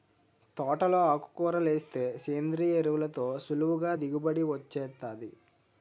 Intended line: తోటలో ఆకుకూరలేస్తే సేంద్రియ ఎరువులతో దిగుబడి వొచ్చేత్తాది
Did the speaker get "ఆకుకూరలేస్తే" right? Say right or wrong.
right